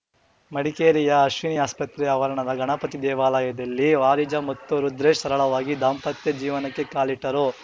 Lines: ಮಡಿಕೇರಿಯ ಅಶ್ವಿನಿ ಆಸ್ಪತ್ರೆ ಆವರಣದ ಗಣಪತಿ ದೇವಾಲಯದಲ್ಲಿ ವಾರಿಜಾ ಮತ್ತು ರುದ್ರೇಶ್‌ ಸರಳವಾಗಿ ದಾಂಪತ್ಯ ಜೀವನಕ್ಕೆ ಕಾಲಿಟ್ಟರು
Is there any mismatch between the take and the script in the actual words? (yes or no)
no